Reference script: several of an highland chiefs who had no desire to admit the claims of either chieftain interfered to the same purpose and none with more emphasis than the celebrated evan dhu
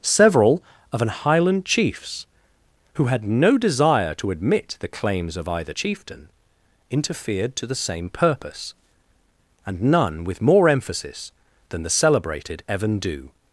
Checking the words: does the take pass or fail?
pass